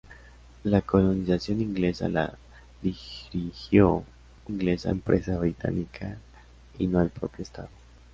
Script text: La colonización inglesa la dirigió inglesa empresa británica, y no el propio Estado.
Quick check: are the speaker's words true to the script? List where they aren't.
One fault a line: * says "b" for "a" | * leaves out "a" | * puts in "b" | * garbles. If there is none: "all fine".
all fine